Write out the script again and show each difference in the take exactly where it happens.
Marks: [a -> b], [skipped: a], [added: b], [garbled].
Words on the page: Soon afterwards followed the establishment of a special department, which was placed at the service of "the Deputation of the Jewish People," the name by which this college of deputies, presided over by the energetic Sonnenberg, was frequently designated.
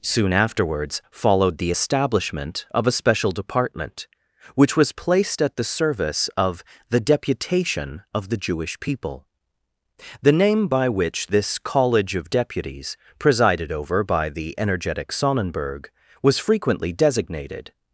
Soon afterwards followed the establishment of a special department, which was placed at the service of "the Deputation of the Jewish People," the name by which this college of deputies, presided over by the energetic Sonnenberg, was frequently designated.